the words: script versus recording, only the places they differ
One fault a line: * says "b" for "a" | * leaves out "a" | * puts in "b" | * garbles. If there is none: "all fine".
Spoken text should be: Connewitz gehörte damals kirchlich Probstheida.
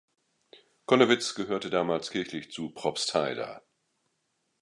* puts in "zu"